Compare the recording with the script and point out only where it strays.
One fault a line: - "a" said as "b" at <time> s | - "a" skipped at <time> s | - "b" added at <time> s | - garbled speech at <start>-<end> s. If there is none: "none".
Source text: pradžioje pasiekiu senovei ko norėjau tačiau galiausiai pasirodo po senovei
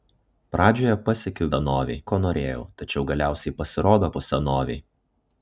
none